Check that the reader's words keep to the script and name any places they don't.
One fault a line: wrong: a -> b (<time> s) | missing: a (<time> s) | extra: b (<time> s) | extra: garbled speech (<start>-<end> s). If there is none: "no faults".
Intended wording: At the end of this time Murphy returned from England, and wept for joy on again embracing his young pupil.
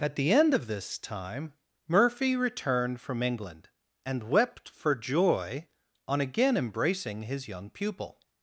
no faults